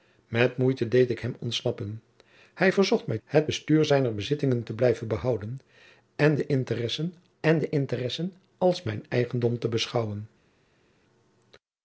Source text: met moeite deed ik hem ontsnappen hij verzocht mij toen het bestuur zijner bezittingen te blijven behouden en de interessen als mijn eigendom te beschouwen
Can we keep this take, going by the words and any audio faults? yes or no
no